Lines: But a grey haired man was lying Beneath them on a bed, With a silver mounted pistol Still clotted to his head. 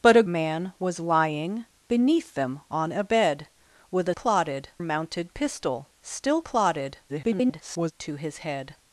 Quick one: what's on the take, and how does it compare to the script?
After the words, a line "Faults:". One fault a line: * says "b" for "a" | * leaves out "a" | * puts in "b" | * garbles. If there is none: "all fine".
But a man was lying Beneath them on a bed, With a clotted mounted pistol Still clotted [garbled] to his head.
Faults:
* leaves out "grey haired"
* says "clotted" for "silver"
* garbles